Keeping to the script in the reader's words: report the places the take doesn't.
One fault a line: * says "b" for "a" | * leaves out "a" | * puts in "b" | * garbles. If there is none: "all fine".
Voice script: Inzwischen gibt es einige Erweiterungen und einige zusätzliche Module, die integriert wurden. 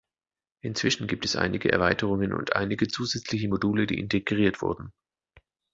all fine